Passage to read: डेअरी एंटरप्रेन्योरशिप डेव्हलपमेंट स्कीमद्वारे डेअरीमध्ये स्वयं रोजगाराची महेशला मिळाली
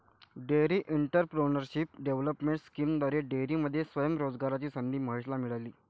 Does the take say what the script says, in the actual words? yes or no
no